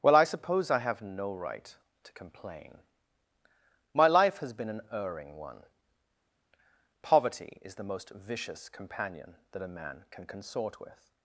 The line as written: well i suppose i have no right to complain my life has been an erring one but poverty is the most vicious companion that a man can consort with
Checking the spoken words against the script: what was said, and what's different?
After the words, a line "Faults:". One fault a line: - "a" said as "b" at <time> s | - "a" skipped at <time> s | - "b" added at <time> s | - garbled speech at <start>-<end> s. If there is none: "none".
well i suppose i have no right to complain my life has been an erring one poverty is the most vicious companion that a man can consort with
Faults:
- "but" skipped at 5.6 s